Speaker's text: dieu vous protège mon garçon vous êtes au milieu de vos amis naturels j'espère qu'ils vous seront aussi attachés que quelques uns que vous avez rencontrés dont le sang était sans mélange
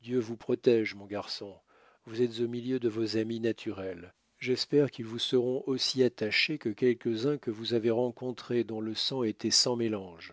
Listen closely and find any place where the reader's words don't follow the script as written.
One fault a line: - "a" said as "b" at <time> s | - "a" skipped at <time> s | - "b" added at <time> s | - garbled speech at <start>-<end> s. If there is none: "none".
none